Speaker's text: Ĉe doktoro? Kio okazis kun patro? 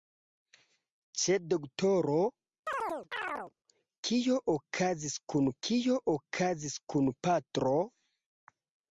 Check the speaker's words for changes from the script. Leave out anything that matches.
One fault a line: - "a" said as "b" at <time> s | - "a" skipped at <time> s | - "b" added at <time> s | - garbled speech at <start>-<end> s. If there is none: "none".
- "kio okazis kun" added at 5.7 s